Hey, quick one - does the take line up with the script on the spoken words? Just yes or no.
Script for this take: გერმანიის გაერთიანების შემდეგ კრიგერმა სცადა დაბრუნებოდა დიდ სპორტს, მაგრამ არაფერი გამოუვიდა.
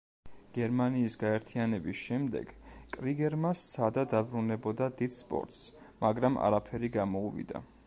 yes